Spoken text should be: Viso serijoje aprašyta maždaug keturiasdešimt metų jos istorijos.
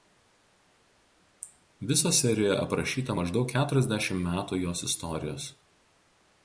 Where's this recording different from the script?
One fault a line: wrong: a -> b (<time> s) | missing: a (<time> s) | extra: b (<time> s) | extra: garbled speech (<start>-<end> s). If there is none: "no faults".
no faults